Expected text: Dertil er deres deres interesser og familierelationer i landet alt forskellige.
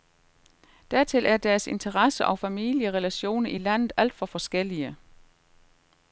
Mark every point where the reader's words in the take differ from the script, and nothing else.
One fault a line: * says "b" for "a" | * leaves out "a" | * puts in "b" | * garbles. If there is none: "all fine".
* leaves out "deres"
* puts in "for"